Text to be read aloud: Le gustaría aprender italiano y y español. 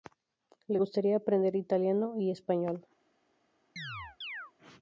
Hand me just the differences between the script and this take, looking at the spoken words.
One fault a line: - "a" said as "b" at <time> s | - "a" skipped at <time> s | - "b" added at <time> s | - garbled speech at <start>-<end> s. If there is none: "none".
- "y" skipped at 2.3 s